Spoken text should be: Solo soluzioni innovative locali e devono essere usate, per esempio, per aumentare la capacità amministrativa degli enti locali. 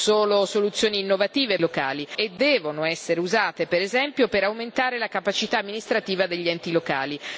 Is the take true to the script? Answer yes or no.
yes